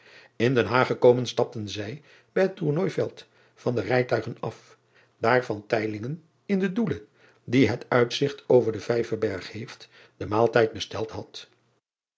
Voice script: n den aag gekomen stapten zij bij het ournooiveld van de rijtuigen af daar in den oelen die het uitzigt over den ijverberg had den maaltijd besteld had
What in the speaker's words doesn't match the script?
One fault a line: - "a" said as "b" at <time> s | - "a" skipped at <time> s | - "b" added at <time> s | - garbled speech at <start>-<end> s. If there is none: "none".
- "had" said as "heeft" at 9.5 s